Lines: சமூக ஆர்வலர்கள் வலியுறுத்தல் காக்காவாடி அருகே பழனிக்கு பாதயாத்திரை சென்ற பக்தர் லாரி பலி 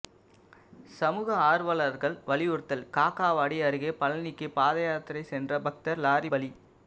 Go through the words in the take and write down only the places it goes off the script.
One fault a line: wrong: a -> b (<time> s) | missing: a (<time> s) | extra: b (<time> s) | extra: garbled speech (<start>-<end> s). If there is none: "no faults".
no faults